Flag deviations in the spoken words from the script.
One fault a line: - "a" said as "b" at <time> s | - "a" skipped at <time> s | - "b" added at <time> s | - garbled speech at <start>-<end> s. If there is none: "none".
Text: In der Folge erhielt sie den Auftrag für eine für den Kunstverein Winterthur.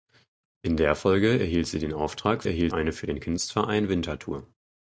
- "für" said as "erhielt" at 2.5 s